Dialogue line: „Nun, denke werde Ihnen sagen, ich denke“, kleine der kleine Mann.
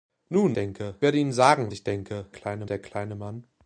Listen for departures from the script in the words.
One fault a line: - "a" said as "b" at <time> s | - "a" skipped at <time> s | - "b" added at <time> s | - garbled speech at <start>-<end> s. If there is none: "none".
none